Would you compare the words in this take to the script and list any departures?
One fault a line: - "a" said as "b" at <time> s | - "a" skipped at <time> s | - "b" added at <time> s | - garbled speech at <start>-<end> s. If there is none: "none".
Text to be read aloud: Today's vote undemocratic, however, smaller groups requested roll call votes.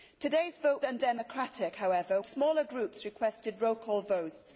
none